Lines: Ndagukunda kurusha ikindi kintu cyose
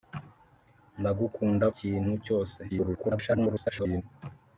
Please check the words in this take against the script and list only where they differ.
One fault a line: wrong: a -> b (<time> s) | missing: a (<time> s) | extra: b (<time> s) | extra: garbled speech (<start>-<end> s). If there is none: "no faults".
missing: kurusha ikindi (1.6 s)
extra: garbled speech (2.7-4.0 s)